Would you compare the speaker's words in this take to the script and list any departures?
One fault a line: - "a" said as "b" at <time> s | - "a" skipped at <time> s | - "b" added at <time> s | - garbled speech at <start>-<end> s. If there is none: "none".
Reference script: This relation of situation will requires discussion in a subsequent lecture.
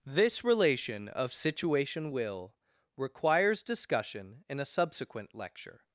none